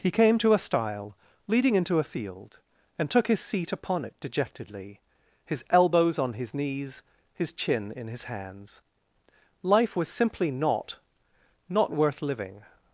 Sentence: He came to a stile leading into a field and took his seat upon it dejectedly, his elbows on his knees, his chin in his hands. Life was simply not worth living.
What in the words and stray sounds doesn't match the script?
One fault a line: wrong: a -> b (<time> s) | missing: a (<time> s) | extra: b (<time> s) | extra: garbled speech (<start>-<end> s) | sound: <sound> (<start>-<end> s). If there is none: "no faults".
extra: not (11.7 s)